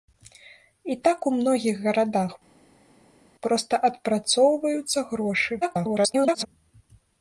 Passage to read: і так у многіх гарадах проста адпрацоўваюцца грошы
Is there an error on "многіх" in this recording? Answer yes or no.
no